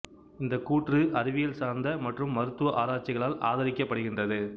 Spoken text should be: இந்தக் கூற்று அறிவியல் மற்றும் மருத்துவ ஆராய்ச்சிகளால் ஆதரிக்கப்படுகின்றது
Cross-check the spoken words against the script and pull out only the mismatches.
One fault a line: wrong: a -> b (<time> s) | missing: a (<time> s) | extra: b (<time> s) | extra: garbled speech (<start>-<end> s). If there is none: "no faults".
extra: சார்ந்த (1.6 s)